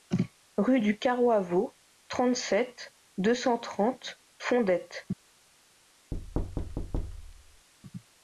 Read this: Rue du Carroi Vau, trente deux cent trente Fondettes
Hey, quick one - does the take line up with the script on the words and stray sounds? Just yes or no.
no